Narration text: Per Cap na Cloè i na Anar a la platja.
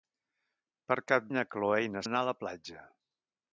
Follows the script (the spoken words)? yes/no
yes